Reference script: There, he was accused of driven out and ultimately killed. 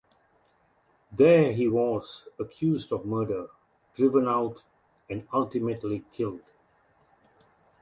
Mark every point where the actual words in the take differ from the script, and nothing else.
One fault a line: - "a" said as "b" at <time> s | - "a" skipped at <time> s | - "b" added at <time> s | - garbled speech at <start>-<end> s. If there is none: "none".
- "murder" added at 3.0 s